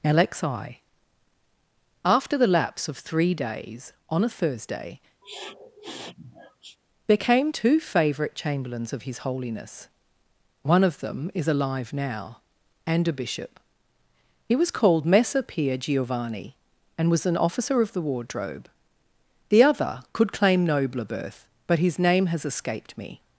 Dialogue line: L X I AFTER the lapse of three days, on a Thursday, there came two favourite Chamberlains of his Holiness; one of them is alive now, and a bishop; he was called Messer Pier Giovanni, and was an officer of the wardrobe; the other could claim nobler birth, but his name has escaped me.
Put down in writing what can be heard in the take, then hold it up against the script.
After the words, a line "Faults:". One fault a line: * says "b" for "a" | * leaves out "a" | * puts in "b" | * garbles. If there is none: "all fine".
L X I AFTER the lapse of three days, on a Thursday, there came two favourite Chamberlains of his Holiness; one of them is alive now, and a bishop; he was called Messer Pier Giovanni, and was an officer of the wardrobe; the other could claim nobler birth, but his name has escaped me.
Faults:
all fine